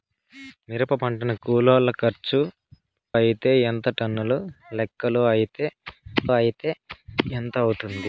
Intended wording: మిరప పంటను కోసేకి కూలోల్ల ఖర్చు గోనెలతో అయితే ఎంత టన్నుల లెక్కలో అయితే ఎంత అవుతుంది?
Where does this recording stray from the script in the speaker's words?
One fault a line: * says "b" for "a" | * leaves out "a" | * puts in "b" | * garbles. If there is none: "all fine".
* leaves out "కోసేకి"
* leaves out "గోనెలతో"
* puts in "అయితే"